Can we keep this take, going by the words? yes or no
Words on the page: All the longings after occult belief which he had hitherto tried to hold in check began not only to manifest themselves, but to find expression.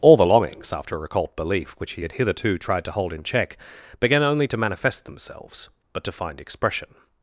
no